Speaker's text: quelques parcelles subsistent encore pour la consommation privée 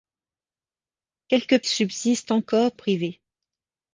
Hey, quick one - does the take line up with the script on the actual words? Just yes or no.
no